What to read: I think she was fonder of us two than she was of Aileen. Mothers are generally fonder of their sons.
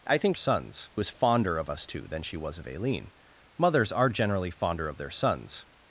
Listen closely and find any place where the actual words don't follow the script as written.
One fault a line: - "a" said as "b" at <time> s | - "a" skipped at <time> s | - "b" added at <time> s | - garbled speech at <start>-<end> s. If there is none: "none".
- "she" said as "sons" at 0.3 s